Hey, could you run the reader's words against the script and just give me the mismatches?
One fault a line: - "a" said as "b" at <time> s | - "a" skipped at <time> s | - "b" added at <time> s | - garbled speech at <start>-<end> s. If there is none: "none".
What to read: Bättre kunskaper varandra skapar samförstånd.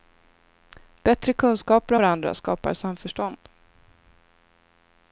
none